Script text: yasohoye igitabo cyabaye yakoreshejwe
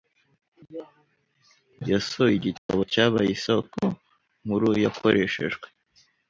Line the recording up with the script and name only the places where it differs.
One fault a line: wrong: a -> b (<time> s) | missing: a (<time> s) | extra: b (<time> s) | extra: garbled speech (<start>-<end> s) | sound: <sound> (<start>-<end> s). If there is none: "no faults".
sound: dropout (2.6-2.7 s)
extra: isoko nkuru (3.4 s)